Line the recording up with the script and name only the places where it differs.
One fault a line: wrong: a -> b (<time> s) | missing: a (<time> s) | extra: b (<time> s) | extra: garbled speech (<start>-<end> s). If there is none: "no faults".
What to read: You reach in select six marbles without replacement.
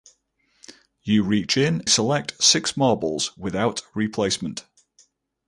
no faults